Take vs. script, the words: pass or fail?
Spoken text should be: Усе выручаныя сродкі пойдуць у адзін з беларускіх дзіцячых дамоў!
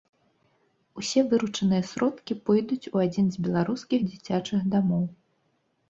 pass